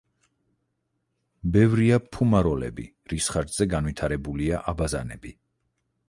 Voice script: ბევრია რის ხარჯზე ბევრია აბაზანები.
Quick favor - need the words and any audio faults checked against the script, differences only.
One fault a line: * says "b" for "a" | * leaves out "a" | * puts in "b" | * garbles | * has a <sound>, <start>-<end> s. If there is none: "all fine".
* puts in "ფუმაროლები"
* says "განვითარებულია" for "ბევრია"